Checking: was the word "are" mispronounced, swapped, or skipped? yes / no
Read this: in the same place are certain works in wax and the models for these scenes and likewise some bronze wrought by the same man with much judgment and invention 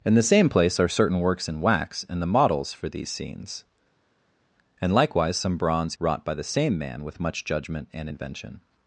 no